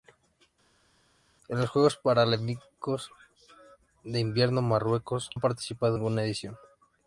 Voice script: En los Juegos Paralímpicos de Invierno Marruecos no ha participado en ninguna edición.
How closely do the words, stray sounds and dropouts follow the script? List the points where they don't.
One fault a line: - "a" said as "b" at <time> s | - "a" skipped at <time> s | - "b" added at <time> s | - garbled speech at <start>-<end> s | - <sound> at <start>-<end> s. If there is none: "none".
- "no" skipped at 5.3 s
- "en" skipped at 6.0 s